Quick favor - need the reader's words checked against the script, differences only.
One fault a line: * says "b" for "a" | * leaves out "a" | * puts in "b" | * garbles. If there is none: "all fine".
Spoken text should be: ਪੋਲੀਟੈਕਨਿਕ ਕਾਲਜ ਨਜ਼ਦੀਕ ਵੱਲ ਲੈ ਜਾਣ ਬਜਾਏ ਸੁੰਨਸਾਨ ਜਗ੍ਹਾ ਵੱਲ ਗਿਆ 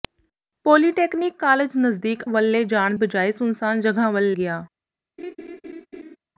all fine